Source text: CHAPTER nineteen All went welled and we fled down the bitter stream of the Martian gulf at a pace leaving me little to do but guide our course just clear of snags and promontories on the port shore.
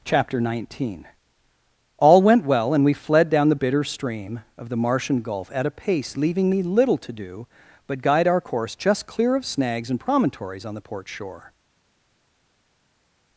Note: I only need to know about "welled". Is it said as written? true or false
false